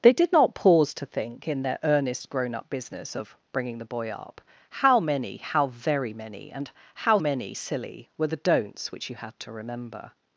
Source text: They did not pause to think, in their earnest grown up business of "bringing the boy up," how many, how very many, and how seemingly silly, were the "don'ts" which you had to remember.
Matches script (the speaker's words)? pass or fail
fail